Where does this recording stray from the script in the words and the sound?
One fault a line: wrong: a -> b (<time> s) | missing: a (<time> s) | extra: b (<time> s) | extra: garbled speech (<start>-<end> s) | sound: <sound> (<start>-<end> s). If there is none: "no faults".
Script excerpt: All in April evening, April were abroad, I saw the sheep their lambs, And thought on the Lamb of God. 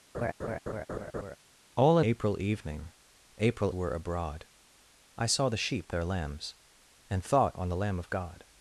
sound: laugh (0.1-1.4 s)